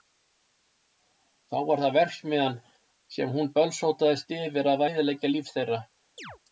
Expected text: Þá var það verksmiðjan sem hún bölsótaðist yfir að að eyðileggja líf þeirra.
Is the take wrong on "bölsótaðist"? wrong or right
right